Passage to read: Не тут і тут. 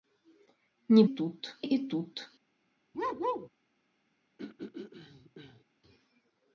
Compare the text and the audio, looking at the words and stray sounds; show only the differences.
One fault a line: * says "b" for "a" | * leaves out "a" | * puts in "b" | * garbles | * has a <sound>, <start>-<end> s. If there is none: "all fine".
* has a bark, 2.9-3.5 s
* has a throat clearing, 4.4-5.6 s